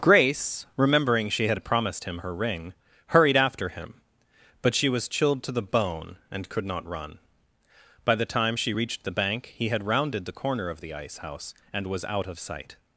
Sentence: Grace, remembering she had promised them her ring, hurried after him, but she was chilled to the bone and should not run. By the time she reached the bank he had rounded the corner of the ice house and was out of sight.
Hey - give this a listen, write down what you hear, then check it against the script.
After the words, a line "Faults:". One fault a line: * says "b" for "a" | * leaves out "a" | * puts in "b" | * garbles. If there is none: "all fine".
Grace, remembering she had promised him her ring, hurried after him, but she was chilled to the bone and could not run. By the time she reached the bank he had rounded the corner of the ice house and was out of sight.
Faults:
* says "him" for "them"
* says "could" for "should"